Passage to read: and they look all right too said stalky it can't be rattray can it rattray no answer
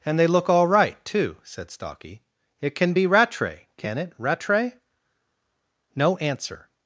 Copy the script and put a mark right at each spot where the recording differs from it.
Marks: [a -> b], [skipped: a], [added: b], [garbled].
and they look all right too said stalky it [can't -> can] be rattray can it rattray no answer